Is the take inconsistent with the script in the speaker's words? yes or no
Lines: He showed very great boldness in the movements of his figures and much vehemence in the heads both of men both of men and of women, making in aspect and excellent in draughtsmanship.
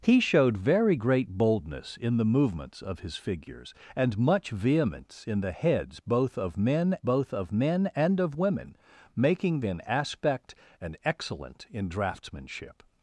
no